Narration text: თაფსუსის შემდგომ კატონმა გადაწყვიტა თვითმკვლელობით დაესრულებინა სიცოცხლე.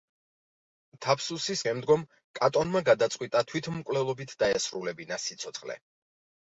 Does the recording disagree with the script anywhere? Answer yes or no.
no